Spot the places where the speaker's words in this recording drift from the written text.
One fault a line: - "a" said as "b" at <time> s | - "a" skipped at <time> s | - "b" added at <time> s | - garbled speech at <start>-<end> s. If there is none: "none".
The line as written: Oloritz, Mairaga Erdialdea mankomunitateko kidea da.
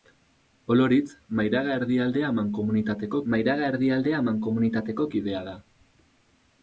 - "Mairaga Erdialdea mankomunitateko" added at 3.3 s